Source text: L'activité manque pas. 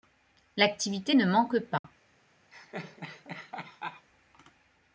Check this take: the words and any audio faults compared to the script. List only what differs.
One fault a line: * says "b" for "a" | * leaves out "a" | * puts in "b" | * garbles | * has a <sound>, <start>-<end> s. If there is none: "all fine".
* puts in "ne"
* has a dropout, 1.8-1.8 s
* has a laugh, 2.5-4.1 s